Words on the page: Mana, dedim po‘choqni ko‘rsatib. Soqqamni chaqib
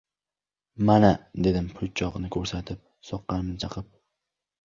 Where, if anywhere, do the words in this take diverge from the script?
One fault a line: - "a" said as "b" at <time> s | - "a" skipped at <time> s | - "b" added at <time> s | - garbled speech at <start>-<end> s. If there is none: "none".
none